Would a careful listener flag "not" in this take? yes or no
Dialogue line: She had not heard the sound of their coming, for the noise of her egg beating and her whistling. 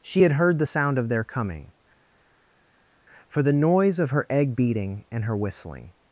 yes